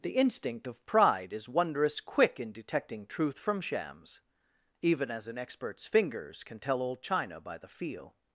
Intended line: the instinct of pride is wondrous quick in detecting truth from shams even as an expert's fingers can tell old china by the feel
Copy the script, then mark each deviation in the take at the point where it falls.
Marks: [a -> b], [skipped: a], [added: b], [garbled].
the instinct of pride is wondrous quick in detecting truth from shams even as an expert's fingers can tell old china by the feel